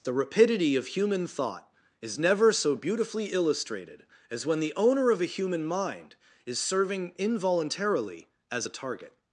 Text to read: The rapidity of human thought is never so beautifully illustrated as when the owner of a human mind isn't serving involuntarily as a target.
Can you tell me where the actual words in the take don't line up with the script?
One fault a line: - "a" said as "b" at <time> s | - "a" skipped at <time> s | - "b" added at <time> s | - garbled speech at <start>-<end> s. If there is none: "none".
- "isn't" said as "is" at 6.4 s